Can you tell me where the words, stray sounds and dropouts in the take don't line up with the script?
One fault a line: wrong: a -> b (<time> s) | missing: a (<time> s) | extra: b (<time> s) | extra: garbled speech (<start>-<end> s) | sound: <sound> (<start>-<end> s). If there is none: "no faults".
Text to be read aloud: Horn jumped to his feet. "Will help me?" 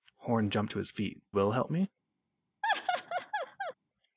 sound: laugh (2.6-3.7 s)